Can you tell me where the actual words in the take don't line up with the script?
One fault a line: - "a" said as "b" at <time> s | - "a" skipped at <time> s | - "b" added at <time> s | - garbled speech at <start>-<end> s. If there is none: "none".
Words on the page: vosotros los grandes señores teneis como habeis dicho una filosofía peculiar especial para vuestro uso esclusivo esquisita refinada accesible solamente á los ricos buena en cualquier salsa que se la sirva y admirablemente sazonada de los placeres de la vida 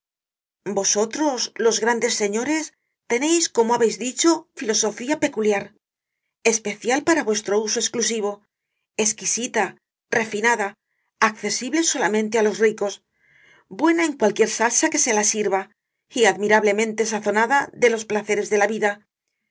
- "una" skipped at 4.3 s